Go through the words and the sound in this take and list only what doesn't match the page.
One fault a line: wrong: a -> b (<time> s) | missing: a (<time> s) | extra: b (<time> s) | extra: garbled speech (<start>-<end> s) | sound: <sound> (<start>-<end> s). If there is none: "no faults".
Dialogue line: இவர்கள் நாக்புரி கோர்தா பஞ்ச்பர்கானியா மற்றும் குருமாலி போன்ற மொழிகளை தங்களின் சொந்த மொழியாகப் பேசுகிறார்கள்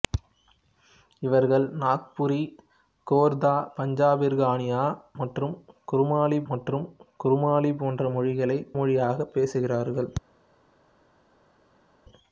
extra: மற்றும் குருமாலி (6.5 s)
missing: தங்களின் சொந்த (8.6 s)